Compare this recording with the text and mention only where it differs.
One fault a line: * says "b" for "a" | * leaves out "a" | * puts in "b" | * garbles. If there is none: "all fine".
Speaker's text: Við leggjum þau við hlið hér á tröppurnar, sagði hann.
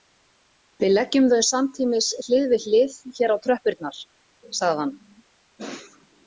* puts in "samtímis hlið"